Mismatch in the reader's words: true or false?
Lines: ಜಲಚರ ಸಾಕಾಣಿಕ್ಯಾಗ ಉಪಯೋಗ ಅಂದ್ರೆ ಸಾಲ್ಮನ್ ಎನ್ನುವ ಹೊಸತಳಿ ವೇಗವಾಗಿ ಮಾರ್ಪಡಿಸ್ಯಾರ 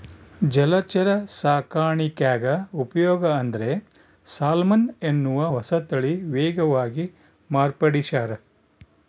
false